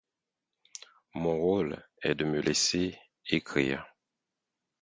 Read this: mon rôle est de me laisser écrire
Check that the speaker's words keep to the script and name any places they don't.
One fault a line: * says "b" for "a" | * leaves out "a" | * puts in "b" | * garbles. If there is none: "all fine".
all fine